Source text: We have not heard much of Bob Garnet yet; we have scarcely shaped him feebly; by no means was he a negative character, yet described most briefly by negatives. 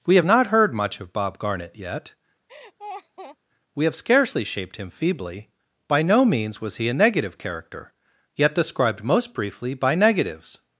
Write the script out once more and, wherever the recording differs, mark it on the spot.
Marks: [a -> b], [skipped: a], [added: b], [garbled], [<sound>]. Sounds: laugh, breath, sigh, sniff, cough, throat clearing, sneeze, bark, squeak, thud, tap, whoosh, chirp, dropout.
We have not heard much of Bob Garnet yet; [laugh] we have scarcely shaped him feebly; by no means was he a negative character, yet described most briefly by negatives.